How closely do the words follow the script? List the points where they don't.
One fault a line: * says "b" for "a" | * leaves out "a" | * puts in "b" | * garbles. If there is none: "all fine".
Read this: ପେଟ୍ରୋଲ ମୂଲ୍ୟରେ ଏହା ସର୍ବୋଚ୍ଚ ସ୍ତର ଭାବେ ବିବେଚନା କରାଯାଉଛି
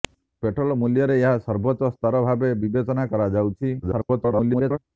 * garbles